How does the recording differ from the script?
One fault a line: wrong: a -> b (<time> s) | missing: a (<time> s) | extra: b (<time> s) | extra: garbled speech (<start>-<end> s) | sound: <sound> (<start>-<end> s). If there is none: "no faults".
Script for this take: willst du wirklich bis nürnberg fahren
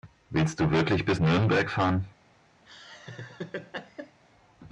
sound: laugh (2.7-4.2 s)